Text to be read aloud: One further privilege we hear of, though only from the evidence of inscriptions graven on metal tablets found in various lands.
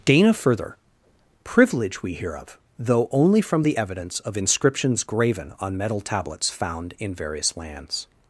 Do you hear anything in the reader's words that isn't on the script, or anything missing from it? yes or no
yes